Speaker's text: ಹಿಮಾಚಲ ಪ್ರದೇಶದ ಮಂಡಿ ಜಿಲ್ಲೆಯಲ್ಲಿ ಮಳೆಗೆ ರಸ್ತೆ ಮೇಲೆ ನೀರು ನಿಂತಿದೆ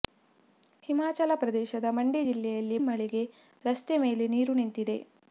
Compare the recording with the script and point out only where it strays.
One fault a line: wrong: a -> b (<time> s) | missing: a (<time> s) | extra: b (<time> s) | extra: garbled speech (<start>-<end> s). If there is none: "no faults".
no faults